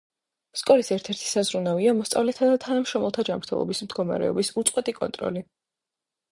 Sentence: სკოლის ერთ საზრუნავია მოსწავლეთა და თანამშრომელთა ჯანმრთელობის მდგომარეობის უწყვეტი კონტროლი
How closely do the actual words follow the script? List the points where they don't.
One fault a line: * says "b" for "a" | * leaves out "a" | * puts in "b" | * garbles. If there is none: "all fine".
* puts in "ერთი"